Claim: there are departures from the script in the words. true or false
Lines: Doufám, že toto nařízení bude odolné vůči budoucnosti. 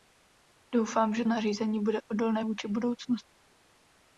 true